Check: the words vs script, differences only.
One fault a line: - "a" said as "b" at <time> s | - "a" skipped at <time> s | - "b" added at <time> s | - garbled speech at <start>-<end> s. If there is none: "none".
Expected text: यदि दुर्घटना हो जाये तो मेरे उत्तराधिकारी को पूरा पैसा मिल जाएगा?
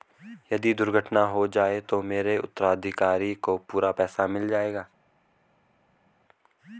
none